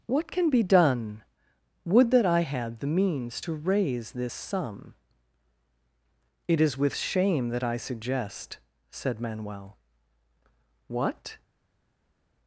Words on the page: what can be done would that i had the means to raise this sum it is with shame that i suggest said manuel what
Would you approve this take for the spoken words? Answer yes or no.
yes